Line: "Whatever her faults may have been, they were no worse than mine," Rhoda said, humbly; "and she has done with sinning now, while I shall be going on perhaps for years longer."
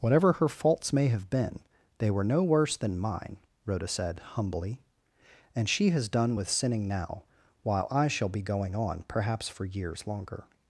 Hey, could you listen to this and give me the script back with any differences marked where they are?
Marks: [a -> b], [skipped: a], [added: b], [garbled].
"Whatever her faults may have been, they were no worse than mine," Rhoda said, humbly; "and she has done with sinning now, while I shall be going on perhaps for years longer."